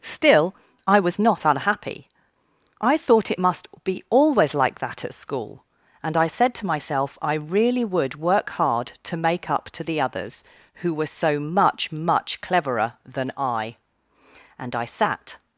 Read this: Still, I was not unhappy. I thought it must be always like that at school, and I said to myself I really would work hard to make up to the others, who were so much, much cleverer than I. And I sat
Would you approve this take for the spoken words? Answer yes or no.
yes